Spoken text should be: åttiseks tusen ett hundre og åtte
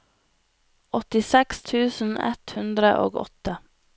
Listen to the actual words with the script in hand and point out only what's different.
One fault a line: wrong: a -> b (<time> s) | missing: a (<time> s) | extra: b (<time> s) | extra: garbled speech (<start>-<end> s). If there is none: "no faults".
no faults